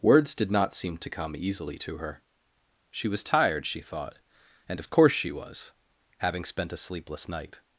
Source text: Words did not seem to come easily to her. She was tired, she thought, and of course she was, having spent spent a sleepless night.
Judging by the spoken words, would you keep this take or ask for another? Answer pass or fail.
fail